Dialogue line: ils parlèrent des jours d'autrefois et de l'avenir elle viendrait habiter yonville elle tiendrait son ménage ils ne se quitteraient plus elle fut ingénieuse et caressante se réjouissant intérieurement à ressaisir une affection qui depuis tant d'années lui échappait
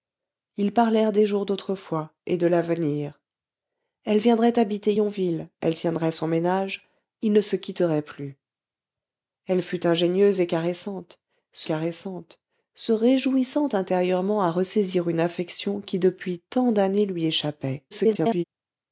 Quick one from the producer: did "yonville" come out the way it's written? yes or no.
yes